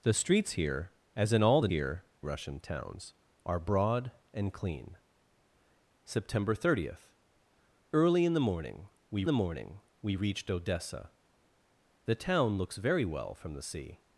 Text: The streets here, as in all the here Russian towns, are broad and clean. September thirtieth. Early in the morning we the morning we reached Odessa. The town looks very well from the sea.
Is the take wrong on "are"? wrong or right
right